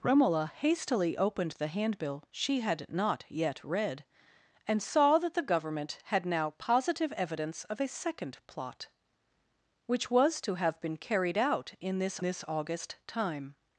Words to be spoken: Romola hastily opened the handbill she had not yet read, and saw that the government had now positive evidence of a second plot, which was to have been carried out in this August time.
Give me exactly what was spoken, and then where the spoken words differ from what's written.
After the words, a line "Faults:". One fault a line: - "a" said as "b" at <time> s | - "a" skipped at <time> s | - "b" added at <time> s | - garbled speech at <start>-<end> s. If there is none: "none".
Romola hastily opened the handbill she had not yet read, and saw that the government had now positive evidence of a second plot, which was to have been carried out in this this August time.
Faults:
- "this" added at 12.2 s